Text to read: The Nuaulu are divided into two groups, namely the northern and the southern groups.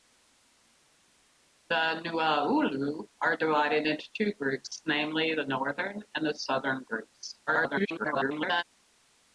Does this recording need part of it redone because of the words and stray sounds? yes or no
yes